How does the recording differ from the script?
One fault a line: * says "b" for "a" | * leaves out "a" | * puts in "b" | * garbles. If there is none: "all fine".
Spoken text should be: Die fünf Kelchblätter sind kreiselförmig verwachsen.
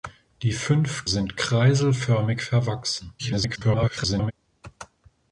* leaves out "Kelchblätter"
* garbles